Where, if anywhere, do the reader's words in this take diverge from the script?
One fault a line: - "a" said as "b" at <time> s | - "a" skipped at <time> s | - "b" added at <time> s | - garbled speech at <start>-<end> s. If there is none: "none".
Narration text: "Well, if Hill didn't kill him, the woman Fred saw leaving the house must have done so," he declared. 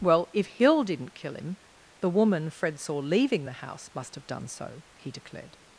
none